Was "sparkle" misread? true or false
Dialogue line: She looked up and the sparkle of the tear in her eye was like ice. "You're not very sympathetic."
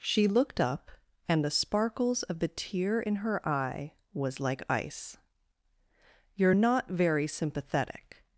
true